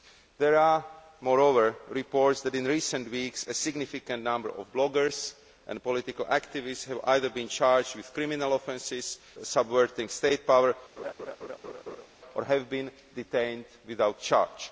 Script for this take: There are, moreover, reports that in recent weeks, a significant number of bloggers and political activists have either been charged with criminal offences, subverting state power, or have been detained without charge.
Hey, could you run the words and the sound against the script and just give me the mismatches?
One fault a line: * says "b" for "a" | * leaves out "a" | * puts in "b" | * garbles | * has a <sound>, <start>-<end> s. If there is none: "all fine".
* has a laugh, 11.0-12.1 s